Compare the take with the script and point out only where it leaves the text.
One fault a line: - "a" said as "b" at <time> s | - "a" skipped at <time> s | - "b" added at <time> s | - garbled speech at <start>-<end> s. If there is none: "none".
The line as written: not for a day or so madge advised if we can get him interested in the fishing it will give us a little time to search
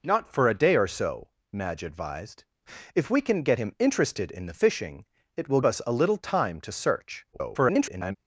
- "give" skipped at 5.6 s
- garbled speech at 7.3-8.2 s